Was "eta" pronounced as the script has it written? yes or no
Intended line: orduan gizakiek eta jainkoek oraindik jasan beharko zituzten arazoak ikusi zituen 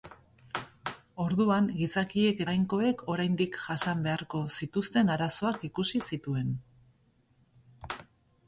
no